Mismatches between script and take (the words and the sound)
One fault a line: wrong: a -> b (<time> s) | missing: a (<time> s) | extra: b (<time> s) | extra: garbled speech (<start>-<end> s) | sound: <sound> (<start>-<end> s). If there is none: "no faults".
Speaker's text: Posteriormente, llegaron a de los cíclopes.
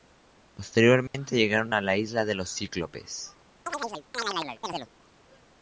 sound: dropout (1.1-1.1 s)
extra: la isla (1.8 s)
sound: chirp (3.7-4.9 s)